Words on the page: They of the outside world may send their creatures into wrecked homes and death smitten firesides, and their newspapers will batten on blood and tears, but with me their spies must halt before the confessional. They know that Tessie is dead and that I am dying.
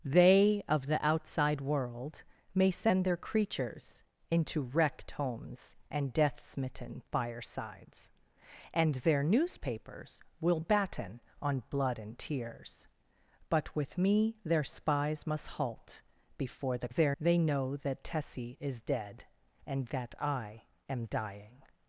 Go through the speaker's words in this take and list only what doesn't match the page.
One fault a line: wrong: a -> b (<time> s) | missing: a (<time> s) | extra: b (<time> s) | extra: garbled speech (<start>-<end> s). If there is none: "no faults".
wrong: confessional -> their (16.9 s)